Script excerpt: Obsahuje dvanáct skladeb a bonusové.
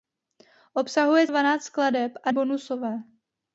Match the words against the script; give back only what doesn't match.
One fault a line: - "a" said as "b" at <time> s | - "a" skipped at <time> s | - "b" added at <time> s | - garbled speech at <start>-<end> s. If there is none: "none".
none